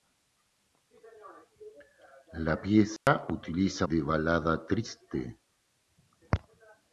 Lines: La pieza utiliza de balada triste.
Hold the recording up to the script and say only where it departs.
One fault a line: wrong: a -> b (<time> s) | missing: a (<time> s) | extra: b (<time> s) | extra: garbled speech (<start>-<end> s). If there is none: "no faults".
no faults